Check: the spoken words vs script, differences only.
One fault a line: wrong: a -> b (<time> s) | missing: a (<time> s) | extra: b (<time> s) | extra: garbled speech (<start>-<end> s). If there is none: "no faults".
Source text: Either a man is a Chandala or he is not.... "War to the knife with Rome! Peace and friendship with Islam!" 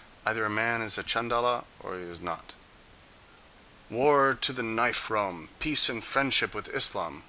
missing: with (5.1 s)